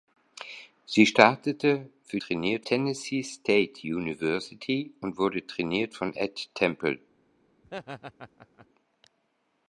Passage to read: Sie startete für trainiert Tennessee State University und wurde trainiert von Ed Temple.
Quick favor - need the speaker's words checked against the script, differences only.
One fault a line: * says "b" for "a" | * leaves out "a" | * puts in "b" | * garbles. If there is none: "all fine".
all fine